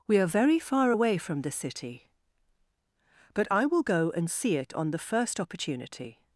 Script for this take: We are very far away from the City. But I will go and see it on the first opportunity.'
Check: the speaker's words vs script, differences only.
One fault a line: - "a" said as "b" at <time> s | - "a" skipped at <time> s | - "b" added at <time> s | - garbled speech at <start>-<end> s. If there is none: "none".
none